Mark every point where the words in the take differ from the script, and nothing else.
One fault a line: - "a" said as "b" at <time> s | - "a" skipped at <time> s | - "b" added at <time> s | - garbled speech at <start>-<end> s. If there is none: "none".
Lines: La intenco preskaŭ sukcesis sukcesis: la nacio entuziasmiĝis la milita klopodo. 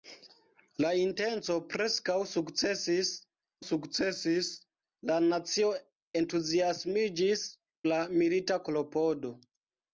none